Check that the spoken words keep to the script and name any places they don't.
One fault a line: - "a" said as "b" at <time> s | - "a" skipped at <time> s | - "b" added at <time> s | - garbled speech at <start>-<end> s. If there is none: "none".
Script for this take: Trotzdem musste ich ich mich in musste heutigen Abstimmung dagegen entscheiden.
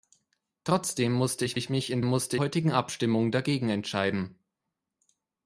none